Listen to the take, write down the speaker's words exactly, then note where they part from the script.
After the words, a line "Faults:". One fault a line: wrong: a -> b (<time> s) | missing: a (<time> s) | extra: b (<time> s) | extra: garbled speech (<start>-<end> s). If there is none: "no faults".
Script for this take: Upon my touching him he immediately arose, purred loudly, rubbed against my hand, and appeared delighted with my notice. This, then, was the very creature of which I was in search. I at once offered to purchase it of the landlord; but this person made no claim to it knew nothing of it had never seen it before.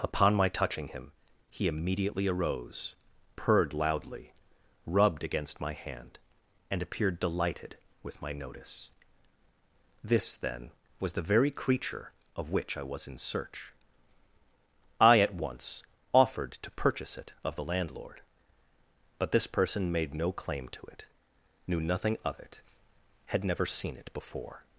Upon my touching him he immediately arose, purred loudly, rubbed against my hand, and appeared delighted with my notice. This, then, was the very creature of which I was in search. I at once offered to purchase it of the landlord; but this person made no claim to it knew nothing of it had never seen it before.
Faults:
no faults